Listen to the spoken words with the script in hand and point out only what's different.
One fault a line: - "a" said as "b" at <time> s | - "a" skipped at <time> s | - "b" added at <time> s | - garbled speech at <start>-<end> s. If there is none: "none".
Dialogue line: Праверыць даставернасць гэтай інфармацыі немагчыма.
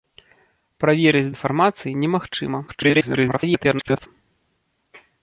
- "даставернасць гэтай" skipped at 1.3 s
- garbled speech at 2.7-4.1 s